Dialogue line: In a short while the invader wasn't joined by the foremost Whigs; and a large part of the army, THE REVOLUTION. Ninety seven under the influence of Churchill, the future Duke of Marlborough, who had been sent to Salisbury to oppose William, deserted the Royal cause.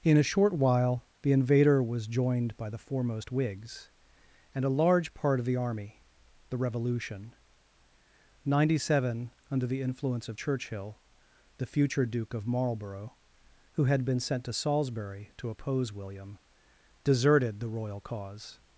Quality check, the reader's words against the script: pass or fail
fail